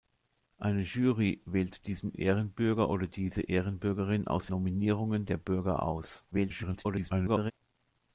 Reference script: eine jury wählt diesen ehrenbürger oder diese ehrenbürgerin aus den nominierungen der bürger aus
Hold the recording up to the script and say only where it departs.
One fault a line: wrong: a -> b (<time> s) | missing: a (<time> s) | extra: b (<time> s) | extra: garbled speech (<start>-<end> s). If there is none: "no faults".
missing: den (4.5 s)
extra: garbled speech (6.3-7.5 s)